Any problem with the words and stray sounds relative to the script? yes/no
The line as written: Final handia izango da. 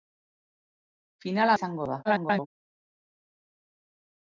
yes